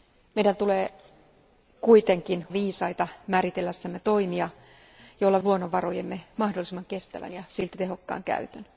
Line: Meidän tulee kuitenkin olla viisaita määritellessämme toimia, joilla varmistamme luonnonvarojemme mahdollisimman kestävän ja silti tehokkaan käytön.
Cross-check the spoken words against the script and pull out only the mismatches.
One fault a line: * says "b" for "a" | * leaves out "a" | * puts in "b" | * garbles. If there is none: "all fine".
* leaves out "olla"
* leaves out "varmistamme"